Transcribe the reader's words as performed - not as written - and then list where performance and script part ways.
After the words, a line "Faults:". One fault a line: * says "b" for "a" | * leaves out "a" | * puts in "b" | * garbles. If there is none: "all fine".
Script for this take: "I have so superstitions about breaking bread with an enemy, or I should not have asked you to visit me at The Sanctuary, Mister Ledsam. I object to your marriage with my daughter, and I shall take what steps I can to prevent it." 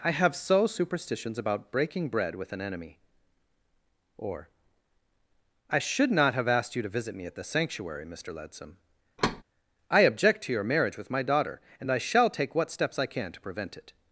"I have so superstitions about breaking bread with an enemy, or I should not have asked you to visit me at The Sanctuary, Mister Ledsam. I object to your marriage with my daughter, and I shall take what steps I can to prevent it."
Faults:
all fine